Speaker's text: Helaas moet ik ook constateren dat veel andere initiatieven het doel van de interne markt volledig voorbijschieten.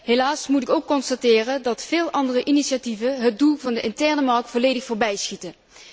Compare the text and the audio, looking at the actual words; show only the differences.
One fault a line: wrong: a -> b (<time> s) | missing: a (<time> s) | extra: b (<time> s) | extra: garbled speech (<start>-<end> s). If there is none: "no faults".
no faults